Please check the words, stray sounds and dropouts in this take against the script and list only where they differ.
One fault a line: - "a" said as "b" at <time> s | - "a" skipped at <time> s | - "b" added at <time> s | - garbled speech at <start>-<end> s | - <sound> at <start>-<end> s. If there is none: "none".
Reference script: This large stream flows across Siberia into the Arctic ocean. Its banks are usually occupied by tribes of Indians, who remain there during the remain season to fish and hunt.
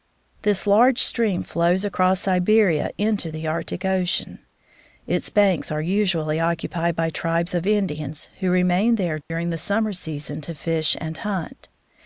- dropout at 9.2-9.3 s
- "remain" said as "summer" at 9.6 s